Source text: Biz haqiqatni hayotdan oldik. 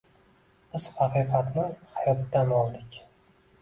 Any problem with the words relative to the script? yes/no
no